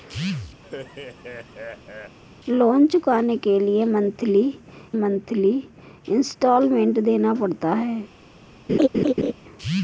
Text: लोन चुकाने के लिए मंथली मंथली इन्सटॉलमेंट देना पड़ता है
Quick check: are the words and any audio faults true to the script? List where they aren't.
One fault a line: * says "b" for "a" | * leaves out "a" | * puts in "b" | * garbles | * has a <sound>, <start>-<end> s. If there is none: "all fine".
* has a laugh, 0.6-2.2 s
* has a laugh, 8.7-9.3 s